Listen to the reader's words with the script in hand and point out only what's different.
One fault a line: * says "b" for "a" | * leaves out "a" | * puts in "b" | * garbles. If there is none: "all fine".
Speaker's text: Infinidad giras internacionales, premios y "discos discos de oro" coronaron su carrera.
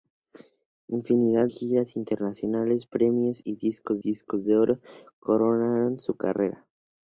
all fine